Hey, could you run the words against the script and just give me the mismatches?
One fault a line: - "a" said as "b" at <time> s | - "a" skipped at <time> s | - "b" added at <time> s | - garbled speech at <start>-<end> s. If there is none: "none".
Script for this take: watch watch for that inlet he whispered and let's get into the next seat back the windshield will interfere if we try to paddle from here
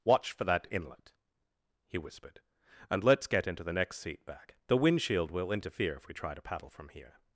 - "watch" skipped at 0.3 s